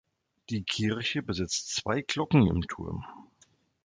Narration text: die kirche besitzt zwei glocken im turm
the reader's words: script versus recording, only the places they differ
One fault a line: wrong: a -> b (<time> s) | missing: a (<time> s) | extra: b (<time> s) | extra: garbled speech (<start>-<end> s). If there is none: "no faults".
no faults